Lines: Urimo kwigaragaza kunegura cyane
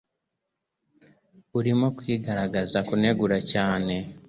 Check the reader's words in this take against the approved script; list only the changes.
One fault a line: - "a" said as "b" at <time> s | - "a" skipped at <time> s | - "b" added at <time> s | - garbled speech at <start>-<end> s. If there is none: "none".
none